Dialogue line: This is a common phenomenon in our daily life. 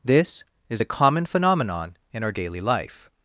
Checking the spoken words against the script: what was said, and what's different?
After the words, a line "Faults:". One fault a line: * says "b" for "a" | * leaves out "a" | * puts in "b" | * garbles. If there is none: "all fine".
This is a common phenomenon in our daily life.
Faults:
all fine